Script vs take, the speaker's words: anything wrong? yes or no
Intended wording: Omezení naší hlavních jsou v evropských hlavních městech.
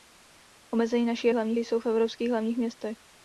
no